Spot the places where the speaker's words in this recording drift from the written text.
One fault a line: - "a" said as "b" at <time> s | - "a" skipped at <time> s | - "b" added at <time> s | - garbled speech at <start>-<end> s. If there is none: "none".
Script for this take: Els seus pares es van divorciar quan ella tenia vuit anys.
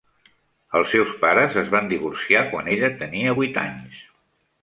none